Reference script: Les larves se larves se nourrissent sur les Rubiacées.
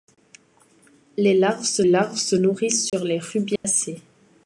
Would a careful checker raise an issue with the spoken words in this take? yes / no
no